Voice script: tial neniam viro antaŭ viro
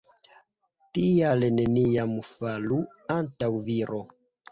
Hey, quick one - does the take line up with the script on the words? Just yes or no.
no